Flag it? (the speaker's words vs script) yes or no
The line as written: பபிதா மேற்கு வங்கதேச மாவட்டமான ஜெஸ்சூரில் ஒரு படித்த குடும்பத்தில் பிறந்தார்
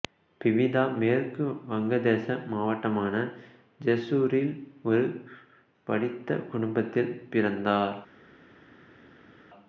no